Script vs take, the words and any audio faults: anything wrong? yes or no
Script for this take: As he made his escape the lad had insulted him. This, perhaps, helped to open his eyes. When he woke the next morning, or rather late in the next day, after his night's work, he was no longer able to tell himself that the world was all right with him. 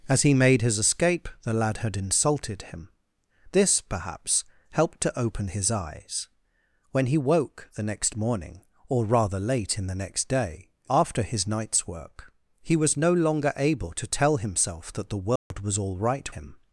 yes